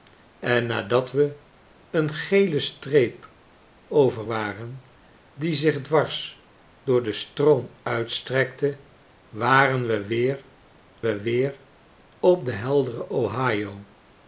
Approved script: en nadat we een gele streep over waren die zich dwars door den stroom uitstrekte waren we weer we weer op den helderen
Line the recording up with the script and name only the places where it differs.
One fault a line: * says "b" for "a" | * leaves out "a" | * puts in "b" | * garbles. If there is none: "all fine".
all fine